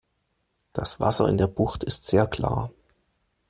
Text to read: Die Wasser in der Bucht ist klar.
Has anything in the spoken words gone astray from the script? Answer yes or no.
yes